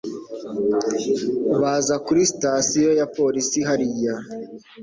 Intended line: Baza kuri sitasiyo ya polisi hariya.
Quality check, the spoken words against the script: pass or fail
pass